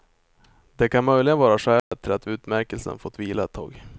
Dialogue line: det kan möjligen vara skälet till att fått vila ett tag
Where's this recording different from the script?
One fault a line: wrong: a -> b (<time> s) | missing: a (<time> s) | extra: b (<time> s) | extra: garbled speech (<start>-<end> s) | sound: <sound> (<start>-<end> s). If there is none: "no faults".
sound: dropout (1.8-1.9 s)
extra: utmärkelsen (2.3 s)